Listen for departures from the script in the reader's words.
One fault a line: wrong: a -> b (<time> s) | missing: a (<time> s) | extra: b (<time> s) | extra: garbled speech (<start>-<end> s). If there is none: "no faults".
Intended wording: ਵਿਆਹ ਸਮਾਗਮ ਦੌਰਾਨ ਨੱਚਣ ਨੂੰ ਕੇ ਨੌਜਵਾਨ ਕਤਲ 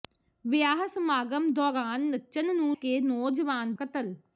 no faults